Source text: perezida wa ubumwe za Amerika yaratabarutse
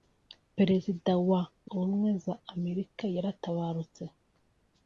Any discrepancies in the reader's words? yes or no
no